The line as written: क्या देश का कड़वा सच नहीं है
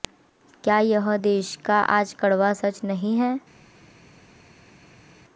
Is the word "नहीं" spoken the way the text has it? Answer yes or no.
yes